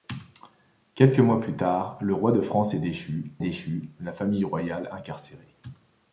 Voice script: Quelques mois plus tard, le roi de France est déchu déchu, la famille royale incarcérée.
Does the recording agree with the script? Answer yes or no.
yes